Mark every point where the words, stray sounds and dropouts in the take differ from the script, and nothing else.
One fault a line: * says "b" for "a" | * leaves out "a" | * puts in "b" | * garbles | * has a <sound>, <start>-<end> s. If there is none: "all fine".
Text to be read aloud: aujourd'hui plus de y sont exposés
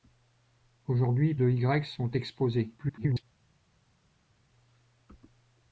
* leaves out "plus"
* garbles